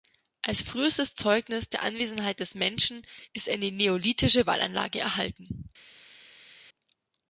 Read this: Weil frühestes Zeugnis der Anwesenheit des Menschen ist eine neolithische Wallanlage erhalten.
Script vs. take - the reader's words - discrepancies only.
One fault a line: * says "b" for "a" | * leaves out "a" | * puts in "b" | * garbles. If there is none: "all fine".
* says "Als" for "Weil"